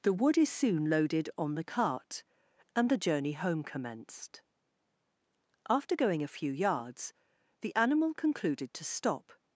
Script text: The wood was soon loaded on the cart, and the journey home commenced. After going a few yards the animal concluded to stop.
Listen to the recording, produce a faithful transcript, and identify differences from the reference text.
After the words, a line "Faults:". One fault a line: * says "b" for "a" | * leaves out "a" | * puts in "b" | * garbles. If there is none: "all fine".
The wood is soon loaded on the cart, and the journey home commenced. After going a few yards the animal concluded to stop.
Faults:
* says "is" for "was"